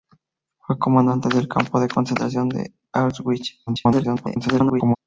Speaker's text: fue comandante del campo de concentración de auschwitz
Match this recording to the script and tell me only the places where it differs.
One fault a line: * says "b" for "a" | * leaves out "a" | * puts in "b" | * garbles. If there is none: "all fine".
* garbles